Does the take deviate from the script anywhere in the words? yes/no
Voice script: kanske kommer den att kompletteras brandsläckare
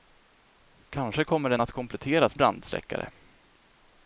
no